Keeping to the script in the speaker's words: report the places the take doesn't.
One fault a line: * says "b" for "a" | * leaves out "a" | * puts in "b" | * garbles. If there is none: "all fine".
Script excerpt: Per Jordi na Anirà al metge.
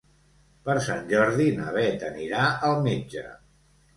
* puts in "Sant"
* puts in "Beth"